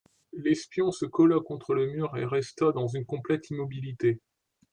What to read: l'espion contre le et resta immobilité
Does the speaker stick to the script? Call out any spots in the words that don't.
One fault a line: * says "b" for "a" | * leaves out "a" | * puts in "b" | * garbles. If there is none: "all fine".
* puts in "se colla"
* puts in "mur"
* puts in "dans une complète"